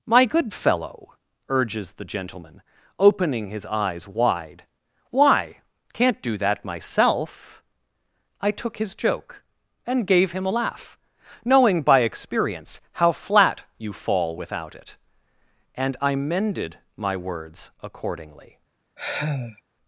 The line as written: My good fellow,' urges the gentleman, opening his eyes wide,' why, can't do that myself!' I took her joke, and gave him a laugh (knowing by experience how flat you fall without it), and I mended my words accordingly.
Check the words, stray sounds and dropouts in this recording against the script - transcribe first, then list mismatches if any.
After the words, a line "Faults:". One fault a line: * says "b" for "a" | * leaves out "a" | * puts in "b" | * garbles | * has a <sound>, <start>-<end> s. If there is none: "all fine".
My good fellow,' urges the gentleman, opening his eyes wide,' why, can't do that myself!' I took his joke, and gave him a laugh (knowing by experience how flat you fall without it), and I mended my words accordingly.
Faults:
* says "his" for "her"
* has a sigh, 19.0-19.6 s